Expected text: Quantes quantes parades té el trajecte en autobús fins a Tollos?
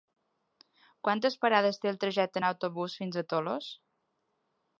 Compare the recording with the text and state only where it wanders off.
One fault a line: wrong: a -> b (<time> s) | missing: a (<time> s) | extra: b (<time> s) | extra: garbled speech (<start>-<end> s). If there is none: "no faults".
missing: quantes (1.4 s)